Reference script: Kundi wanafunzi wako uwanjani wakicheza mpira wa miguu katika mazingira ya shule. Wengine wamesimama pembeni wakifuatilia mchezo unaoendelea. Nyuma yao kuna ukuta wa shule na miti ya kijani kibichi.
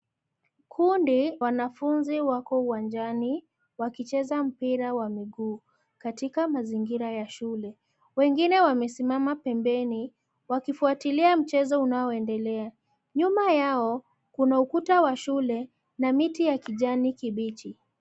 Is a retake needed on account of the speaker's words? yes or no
no